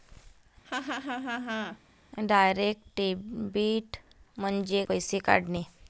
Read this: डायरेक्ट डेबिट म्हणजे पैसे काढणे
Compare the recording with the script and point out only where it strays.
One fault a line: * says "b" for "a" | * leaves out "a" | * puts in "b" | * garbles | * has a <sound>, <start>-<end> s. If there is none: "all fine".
* has a laugh, 0.6-1.8 s